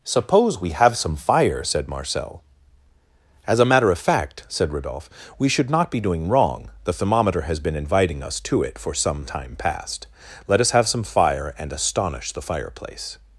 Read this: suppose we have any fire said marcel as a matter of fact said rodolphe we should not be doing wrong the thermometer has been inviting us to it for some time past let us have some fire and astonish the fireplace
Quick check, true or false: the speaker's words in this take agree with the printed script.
false